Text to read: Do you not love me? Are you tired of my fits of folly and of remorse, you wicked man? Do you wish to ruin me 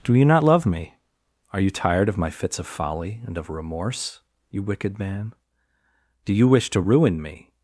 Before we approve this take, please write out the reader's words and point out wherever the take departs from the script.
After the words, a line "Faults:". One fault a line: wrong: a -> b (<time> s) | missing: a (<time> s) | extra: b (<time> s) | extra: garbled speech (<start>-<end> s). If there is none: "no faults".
Do you not love me? Are you tired of my fits of folly and of remorse, you wicked man? Do you wish to ruin me
Faults:
no faults